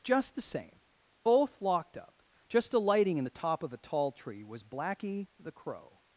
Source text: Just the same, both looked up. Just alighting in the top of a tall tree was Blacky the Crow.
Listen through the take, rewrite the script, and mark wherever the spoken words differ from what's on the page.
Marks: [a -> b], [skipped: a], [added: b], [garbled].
Just the same, both [looked -> locked] up. Just alighting in the top of a tall tree was Blacky the Crow.